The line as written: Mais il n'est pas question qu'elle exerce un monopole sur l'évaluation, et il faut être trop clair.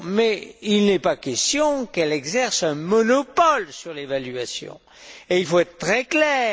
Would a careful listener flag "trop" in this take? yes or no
yes